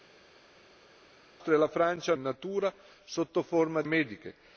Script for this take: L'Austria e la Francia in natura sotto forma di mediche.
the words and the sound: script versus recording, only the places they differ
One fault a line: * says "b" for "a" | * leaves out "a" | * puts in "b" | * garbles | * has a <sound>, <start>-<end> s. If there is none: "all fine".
all fine